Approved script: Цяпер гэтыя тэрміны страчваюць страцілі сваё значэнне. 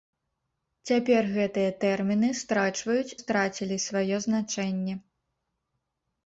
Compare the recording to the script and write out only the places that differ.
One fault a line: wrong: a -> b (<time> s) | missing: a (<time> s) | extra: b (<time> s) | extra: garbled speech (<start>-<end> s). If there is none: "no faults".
no faults